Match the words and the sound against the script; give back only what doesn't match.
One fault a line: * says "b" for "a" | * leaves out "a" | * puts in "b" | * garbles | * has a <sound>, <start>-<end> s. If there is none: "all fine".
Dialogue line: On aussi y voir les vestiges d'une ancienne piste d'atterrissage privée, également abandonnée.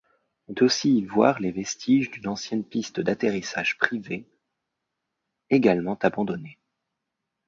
all fine